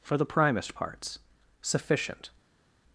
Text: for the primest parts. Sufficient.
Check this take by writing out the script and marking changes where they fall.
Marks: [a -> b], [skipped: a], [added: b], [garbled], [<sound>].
for the primest parts. Sufficient.